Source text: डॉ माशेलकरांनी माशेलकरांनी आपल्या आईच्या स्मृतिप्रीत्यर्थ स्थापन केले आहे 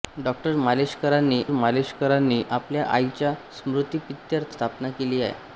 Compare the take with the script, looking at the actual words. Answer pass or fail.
pass